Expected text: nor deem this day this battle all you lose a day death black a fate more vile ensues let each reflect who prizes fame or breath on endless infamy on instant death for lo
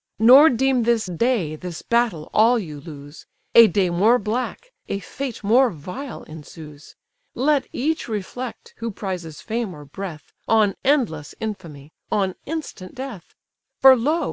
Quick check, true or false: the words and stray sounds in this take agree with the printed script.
false